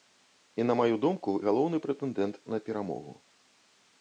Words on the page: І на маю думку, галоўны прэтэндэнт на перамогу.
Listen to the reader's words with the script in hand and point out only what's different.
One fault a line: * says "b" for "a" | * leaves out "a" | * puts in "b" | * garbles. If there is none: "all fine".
all fine